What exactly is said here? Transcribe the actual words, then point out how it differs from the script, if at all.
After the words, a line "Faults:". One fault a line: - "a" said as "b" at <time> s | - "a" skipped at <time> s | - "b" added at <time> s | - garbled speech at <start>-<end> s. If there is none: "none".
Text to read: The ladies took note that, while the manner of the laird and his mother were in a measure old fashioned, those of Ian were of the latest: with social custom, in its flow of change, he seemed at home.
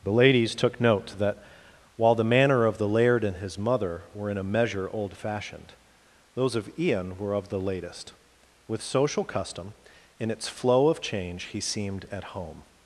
The ladies took note that, while the manner of the laird and his mother were in a measure old fashioned, those of Ian were of the latest: with social custom, in its flow of change, he seemed at home.
Faults:
none